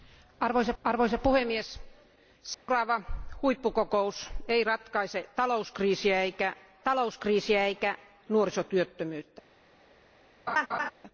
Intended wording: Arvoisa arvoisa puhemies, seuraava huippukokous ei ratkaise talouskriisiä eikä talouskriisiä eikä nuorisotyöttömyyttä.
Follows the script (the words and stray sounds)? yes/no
no